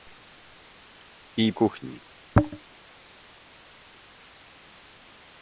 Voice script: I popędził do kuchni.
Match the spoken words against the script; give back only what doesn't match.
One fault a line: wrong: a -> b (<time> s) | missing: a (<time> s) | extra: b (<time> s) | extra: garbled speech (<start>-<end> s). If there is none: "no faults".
missing: popędził do (1.5 s)